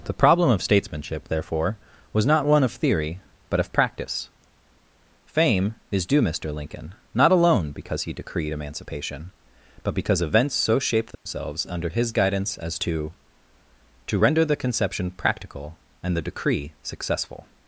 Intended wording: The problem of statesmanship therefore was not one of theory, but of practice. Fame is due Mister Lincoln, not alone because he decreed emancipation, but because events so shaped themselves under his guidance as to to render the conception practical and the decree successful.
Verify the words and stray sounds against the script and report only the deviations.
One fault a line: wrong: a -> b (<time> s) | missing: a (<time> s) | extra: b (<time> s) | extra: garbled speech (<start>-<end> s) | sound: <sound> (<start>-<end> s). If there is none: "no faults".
sound: dropout (11.1-11.3 s)